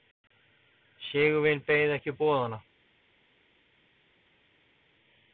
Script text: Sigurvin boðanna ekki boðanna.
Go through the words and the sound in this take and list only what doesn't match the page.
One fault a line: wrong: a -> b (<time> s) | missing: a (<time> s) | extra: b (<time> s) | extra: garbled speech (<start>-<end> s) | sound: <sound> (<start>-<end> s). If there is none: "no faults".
wrong: boðanna -> beið (1.7 s)